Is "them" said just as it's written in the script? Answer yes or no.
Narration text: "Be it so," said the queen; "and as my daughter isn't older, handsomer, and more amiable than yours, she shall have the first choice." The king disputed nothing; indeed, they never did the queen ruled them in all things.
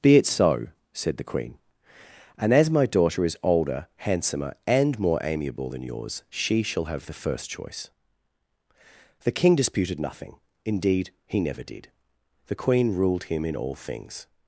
no